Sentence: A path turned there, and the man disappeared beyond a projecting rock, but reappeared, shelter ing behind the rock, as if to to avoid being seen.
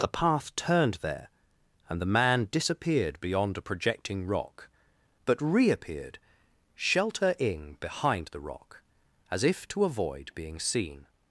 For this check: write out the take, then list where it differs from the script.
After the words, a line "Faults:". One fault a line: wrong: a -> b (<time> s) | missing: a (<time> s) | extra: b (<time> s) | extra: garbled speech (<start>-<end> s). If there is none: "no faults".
The path turned there, and the man disappeared beyond a projecting rock, but reappeared, shelter ing behind the rock, as if to avoid being seen.
Faults:
wrong: A -> The (0.0 s)
missing: to (9.8 s)